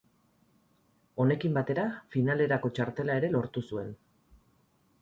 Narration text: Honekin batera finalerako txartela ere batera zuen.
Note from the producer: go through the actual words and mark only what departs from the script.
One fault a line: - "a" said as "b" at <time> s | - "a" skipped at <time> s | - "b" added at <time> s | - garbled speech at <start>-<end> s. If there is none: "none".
- "batera" said as "lortu" at 3.4 s